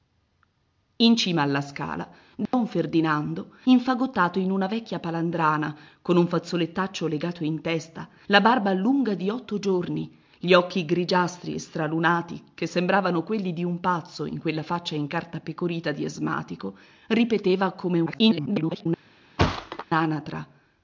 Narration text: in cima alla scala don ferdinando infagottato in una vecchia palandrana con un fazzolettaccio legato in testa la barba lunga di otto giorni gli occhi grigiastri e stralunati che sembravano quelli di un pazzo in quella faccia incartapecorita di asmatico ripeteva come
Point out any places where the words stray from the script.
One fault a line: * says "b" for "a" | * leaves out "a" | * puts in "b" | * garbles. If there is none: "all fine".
* garbles